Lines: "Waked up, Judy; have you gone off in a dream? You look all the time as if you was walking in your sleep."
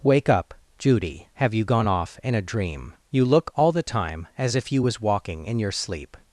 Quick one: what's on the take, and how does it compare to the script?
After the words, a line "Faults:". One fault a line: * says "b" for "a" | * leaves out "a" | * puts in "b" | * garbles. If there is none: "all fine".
"Wake up, Judy; have you gone off in a dream? You look all the time as if you was walking in your sleep."
Faults:
* says "Wake" for "Waked"